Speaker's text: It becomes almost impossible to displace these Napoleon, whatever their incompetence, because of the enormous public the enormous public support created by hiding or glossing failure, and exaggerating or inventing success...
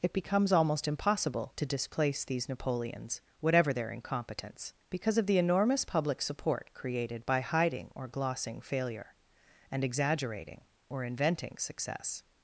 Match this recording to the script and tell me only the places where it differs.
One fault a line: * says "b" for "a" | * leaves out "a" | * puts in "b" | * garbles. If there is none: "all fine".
* says "Napoleons" for "Napoleon"
* leaves out "the enormous public"